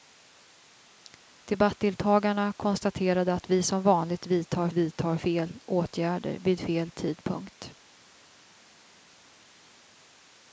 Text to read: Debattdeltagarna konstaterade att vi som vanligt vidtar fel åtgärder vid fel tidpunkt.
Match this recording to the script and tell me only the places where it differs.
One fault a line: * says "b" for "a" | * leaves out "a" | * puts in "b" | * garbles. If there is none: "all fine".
* puts in "vidtar"